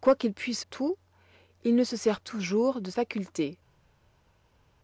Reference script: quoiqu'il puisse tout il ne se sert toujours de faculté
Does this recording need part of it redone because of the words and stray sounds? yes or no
no